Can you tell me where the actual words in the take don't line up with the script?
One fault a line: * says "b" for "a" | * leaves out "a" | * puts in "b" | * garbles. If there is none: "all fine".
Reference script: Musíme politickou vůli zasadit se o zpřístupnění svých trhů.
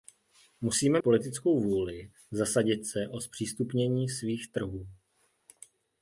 all fine